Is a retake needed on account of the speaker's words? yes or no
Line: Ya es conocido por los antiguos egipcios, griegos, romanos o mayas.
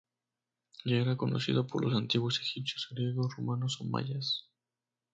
yes